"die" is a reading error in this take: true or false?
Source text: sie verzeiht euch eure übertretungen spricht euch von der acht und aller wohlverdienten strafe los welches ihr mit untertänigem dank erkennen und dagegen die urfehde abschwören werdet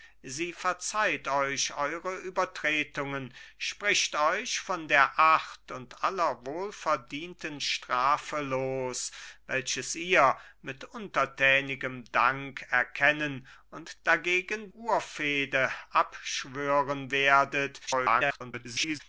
true